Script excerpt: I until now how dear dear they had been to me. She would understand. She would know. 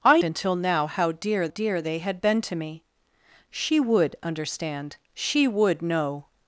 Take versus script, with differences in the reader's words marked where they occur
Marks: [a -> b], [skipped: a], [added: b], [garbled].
I until now how dear dear they had been to me. She would understand. She would know.